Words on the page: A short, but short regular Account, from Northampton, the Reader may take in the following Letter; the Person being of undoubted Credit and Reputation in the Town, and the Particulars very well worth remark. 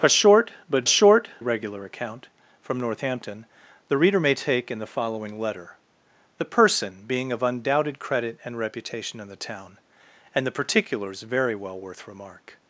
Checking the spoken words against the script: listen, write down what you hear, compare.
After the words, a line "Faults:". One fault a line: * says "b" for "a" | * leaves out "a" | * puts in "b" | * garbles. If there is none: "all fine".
A short, but short regular Account, from Northampton, the Reader may take in the following Letter; the Person being of undoubted Credit and Reputation in the Town, and the Particulars very well worth remark.
Faults:
all fine